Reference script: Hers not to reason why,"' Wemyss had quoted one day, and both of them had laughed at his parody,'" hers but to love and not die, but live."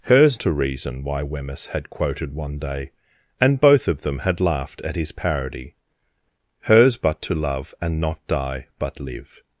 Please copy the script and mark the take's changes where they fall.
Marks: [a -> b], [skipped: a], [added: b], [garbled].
Hers [skipped: not] to reason why,"' Wemyss had quoted one day, and both of them had laughed at his parody,'" hers but to love and not die, but live."